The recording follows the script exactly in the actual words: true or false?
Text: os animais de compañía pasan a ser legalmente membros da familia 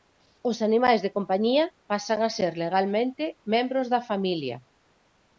true